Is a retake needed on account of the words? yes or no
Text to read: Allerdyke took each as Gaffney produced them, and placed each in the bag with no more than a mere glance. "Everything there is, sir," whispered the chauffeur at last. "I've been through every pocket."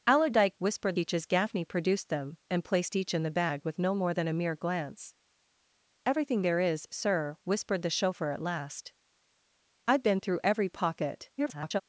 yes